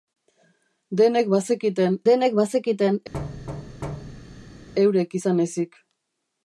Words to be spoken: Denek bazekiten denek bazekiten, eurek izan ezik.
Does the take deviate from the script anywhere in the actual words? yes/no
no